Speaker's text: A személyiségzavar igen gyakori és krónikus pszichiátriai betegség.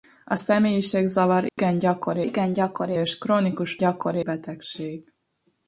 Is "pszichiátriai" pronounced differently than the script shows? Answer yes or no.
yes